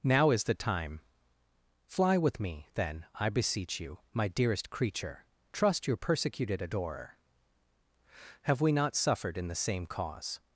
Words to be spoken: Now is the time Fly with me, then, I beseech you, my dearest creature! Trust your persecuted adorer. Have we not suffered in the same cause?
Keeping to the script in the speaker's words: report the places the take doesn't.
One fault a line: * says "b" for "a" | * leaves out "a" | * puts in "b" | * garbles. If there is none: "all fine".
all fine